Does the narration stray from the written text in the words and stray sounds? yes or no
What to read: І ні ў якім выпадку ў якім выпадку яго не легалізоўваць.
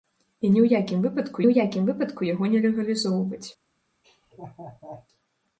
yes